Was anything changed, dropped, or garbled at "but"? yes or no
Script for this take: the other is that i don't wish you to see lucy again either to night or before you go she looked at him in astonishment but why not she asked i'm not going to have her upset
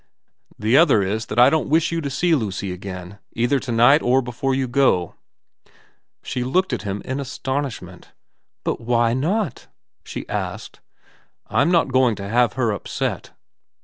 no